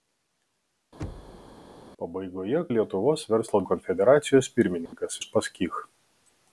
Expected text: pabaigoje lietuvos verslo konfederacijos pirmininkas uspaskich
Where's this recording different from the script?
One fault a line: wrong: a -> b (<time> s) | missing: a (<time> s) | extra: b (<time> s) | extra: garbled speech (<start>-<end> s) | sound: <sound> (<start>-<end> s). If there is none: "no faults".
sound: thud (1.0-1.6 s)
sound: dropout (4.9-4.9 s)